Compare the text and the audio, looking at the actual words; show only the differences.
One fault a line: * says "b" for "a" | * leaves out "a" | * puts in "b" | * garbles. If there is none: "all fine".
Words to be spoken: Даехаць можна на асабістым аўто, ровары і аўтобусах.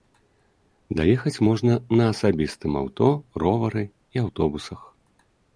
all fine